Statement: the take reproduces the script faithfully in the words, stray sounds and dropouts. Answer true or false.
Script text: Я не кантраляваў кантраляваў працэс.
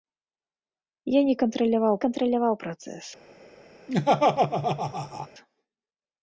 false